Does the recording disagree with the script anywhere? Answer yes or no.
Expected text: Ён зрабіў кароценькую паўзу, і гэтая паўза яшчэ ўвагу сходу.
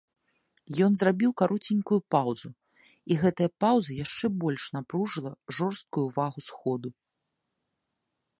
yes